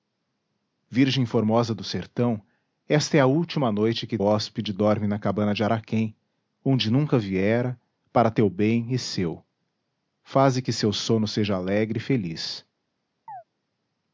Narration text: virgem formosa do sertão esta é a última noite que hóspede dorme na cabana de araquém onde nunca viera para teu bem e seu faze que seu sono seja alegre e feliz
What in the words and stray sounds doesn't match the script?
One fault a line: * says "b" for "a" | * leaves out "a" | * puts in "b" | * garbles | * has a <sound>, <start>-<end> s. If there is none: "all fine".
* has a chirp, 13.3-13.4 s